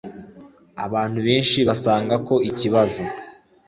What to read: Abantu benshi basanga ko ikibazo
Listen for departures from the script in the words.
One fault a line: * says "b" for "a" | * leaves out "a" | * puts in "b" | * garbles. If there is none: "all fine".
all fine